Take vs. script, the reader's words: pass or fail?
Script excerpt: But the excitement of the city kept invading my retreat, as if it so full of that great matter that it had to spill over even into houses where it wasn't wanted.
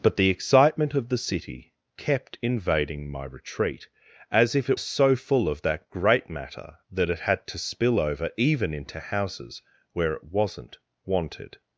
pass